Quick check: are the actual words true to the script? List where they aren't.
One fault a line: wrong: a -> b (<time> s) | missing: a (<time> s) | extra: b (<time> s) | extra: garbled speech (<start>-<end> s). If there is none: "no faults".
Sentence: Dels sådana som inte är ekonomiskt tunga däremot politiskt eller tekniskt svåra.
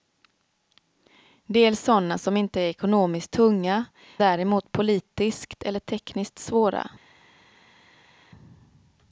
no faults